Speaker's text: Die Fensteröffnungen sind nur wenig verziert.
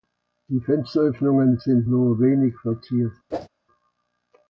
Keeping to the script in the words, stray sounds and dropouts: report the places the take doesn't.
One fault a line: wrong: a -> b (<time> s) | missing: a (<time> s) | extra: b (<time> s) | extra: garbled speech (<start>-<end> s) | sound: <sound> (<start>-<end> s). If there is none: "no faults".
sound: whoosh (3.3-3.5 s)